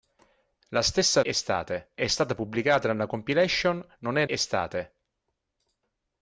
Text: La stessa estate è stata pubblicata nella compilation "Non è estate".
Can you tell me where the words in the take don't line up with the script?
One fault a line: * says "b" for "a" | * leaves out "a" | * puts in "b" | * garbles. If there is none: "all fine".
all fine